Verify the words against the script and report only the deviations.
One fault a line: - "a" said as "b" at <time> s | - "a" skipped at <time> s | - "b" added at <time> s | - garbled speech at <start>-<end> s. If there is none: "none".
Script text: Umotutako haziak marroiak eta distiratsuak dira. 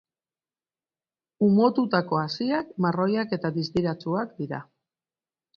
none